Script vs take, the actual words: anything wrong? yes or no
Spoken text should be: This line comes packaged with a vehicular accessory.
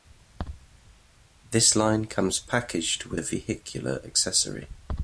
no